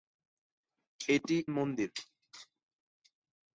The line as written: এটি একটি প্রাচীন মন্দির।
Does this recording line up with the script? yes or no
no